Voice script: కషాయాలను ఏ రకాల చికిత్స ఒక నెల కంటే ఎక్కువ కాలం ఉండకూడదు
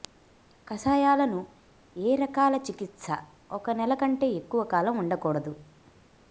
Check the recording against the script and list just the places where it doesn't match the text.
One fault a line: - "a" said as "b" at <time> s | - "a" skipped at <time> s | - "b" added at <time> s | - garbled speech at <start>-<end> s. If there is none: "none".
none